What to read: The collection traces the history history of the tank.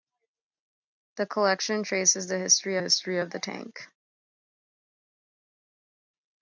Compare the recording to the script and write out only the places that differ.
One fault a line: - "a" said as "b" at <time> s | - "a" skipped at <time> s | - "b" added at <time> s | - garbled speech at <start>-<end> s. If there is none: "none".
none